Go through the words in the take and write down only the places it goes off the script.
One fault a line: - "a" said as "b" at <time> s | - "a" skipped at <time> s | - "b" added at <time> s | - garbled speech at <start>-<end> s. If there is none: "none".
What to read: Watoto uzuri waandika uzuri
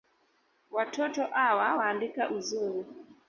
- "uzuri" said as "awa" at 1.4 s